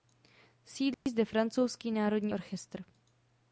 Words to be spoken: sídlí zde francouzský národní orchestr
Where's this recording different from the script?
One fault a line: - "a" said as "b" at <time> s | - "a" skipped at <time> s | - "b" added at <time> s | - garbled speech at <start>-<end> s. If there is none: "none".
none